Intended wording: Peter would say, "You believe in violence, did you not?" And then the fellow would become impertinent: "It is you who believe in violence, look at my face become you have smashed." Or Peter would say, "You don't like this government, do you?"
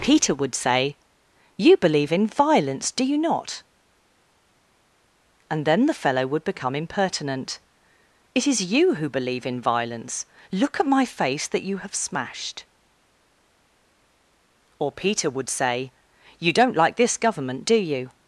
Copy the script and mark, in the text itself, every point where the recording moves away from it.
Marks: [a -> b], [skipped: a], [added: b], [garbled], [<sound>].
Peter would say, "You believe in violence, [did -> do] you not?" And then the fellow would become impertinent: "It is you who believe in violence, look at my face [become -> that] you have smashed." Or Peter would say, "You don't like this government, do you?"